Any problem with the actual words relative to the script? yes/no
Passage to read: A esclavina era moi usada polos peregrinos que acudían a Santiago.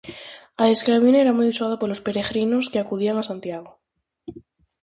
no